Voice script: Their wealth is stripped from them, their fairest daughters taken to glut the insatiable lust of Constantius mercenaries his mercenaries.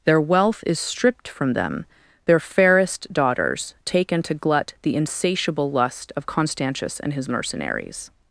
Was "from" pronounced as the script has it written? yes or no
yes